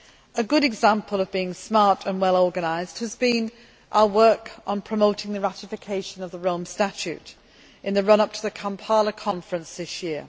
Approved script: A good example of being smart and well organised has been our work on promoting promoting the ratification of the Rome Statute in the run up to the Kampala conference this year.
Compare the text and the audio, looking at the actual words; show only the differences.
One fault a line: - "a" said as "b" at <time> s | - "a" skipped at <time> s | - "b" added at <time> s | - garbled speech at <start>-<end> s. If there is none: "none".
- "promoting" skipped at 5.3 s